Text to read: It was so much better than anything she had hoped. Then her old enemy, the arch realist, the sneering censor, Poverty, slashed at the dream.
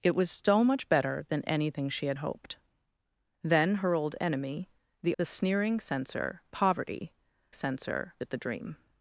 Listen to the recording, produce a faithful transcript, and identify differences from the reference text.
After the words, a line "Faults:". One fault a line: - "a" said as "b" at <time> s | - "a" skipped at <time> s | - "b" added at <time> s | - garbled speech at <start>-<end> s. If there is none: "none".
It was so much better than anything she had hoped. Then her old enemy, the the sneering censor, Poverty, censor at the dream.
Faults:
- "arch realist" skipped at 5.1 s
- "slashed" said as "censor" at 7.5 s